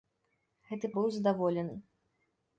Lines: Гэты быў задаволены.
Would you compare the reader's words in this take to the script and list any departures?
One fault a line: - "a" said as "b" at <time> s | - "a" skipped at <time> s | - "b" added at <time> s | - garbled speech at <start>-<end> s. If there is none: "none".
none